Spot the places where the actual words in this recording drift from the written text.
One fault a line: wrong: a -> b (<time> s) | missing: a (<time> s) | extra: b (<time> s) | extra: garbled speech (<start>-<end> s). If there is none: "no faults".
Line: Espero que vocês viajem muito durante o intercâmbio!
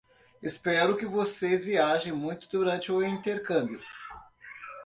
no faults